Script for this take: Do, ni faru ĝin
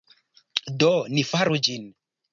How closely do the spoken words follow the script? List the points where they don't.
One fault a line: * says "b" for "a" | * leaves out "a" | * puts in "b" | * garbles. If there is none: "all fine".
all fine